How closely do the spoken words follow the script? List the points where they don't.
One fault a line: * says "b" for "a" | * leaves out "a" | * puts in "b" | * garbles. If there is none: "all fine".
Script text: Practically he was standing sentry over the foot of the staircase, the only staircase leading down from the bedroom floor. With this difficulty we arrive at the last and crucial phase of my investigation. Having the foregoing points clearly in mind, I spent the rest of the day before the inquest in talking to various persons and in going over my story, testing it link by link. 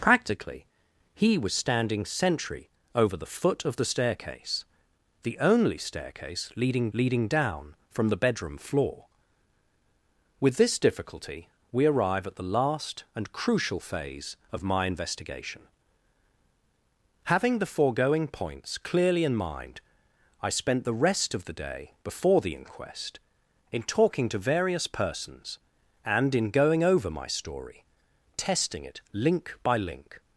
* puts in "leading"